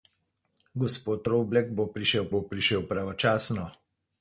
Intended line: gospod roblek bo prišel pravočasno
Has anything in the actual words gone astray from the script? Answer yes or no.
yes